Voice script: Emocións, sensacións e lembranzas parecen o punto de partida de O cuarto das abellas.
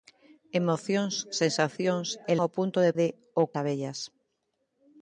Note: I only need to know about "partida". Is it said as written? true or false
false